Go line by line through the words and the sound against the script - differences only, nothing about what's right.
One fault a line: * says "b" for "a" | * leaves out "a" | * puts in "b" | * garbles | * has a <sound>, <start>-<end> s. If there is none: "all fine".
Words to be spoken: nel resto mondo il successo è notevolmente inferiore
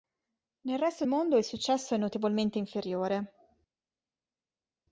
all fine